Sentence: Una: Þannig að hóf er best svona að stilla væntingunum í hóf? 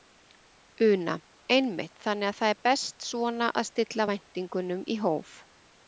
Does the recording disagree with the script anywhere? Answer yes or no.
yes